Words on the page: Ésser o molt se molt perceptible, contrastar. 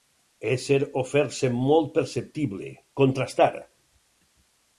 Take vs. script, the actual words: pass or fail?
fail